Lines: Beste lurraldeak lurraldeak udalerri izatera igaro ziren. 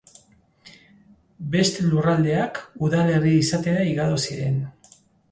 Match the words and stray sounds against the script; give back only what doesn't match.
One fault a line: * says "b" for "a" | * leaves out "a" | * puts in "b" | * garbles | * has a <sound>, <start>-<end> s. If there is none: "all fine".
* leaves out "lurraldeak"